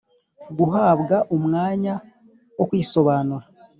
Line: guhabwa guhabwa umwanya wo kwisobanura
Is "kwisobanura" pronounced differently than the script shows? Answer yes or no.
no